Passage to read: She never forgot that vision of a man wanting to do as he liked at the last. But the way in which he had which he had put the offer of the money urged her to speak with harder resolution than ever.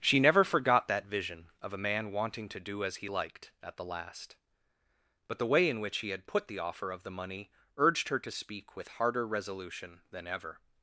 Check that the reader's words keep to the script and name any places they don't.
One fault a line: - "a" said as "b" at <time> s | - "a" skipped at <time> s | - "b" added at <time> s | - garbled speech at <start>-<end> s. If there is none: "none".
- "which he had" skipped at 6.2 s